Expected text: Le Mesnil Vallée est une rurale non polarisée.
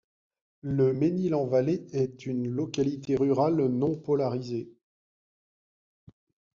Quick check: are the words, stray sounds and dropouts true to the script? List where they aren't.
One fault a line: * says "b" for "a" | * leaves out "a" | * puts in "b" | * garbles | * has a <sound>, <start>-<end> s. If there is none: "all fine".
* puts in "en"
* puts in "localité"